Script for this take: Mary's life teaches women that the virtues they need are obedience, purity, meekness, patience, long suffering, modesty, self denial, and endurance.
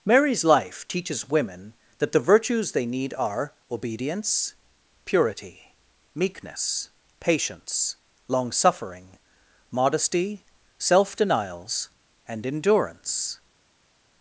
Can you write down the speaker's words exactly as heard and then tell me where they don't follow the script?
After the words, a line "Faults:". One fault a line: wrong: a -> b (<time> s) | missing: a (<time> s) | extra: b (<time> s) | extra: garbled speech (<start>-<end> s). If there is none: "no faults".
Mary's life teaches women that the virtues they need are obedience, purity, meekness, patience, long suffering, modesty, self denials, and endurance.
Faults:
wrong: denial -> denials (11.2 s)